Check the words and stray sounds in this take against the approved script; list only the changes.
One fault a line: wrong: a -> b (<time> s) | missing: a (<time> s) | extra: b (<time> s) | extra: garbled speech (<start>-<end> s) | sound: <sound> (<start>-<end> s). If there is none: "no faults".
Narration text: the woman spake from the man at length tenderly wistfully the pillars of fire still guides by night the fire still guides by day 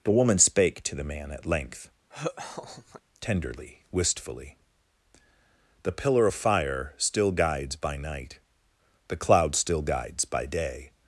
wrong: from -> to (0.8 s)
sound: laugh (2.1-3.0 s)
wrong: pillars -> pillar (5.9 s)
wrong: fire -> cloud (9.2 s)